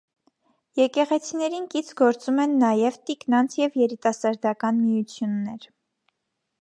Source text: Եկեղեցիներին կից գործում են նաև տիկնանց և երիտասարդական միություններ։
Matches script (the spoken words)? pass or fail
pass